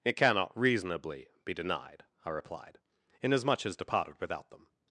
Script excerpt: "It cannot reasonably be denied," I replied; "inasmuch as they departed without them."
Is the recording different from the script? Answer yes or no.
yes